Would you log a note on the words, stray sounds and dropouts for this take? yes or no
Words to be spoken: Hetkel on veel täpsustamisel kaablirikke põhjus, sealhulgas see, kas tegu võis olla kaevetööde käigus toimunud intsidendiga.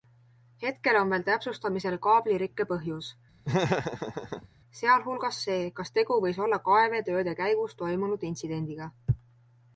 yes